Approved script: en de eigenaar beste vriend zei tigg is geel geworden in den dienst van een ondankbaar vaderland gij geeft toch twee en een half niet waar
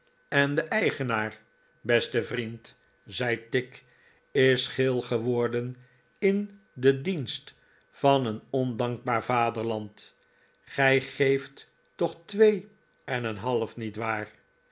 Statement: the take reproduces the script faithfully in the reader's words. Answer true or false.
true